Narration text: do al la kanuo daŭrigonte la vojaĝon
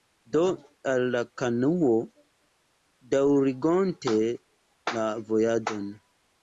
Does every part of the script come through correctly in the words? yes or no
yes